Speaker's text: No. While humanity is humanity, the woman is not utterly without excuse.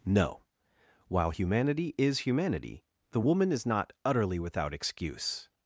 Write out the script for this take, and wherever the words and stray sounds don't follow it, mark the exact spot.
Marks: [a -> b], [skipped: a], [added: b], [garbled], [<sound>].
No. While humanity is humanity, the woman is not utterly without excuse.